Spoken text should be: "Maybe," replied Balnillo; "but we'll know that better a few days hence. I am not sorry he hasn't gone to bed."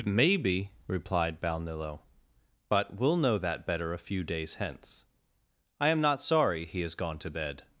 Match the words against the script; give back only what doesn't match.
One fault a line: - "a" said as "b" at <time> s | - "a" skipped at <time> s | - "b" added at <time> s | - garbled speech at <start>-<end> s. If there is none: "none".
- "hasn't" said as "has" at 6.8 s